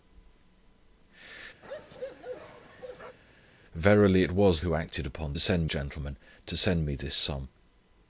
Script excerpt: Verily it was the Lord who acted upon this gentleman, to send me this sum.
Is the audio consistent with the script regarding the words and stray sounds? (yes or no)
no